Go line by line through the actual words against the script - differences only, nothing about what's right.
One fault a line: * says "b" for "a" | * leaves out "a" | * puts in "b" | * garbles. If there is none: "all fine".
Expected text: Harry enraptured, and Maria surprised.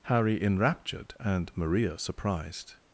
all fine